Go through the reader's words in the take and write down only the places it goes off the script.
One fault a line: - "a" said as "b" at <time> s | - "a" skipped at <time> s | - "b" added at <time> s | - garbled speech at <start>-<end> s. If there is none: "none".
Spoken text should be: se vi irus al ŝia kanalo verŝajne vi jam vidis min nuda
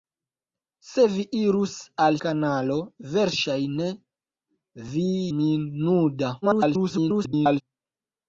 - "ŝia" skipped at 2.2 s
- "jam vidis" skipped at 5.1 s
- garbled speech at 6.4-7.6 s